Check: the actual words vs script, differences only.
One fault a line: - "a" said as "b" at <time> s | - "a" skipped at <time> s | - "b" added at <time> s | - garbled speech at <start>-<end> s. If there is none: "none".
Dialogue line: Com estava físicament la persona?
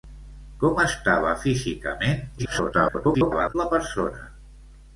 - garbled speech at 2.4-3.6 s